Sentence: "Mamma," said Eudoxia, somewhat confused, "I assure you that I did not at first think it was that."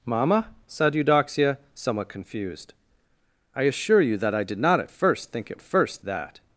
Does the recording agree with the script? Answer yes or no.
no